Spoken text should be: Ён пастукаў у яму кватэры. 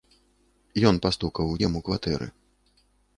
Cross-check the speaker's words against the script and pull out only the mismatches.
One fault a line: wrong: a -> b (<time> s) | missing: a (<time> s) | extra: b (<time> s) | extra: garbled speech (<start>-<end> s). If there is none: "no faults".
no faults